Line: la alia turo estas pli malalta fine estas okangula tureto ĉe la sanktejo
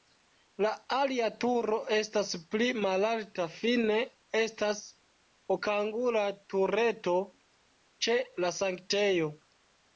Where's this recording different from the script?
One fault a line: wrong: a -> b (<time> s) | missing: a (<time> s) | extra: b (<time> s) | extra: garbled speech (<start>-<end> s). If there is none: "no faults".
no faults